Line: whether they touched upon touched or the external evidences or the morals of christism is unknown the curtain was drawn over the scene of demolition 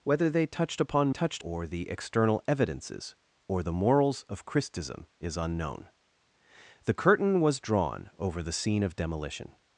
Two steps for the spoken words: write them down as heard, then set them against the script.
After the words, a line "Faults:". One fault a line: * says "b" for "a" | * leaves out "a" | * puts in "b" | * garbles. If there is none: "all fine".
whether they touched upon touched or the external evidences or the morals of christism is unknown the curtain was drawn over the scene of demolition
Faults:
all fine